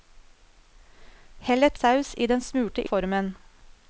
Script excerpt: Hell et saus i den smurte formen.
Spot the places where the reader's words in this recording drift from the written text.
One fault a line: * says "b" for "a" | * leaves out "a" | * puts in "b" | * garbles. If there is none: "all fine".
all fine